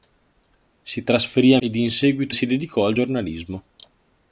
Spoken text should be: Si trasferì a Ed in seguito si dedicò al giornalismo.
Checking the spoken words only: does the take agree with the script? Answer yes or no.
yes